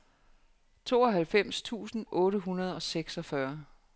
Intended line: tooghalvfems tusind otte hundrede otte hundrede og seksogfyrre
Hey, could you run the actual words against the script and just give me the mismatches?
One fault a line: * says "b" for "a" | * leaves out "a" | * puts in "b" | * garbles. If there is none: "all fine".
* leaves out "otte hundrede"